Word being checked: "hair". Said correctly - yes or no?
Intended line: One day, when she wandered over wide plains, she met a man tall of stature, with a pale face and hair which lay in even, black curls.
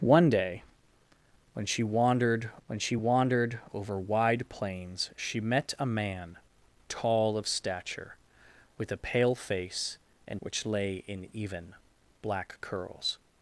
no